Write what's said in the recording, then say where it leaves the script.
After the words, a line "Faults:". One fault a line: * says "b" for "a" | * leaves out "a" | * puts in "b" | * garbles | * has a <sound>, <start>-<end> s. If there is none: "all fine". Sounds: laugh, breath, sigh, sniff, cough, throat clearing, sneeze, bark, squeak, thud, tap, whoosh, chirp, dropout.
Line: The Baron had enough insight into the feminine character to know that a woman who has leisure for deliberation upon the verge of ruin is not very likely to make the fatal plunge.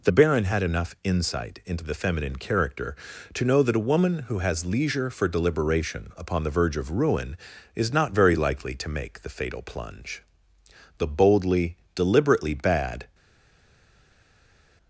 The Baron had enough insight into the feminine character to know that a woman who has leisure for deliberation upon the verge of ruin is not very likely to make the fatal plunge. The boldly, deliberately bad
Faults:
* puts in "The boldly deliberately bad"